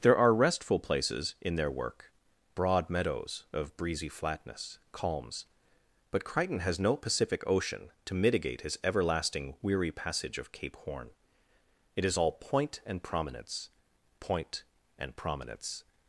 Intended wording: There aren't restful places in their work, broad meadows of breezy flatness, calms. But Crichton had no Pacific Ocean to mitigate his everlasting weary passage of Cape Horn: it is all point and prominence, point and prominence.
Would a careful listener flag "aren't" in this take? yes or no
yes